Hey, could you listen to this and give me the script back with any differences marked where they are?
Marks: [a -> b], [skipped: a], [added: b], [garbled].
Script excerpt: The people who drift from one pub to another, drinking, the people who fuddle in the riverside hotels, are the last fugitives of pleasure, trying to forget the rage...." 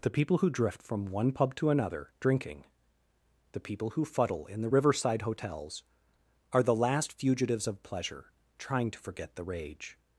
The people who drift from one pub to another, drinking, the people who fuddle in the riverside hotels, are the last fugitives of pleasure, trying to forget the rage...."